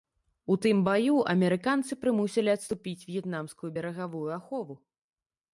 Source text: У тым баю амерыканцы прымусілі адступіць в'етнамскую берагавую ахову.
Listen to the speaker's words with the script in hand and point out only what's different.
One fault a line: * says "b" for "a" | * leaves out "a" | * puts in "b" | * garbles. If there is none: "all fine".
all fine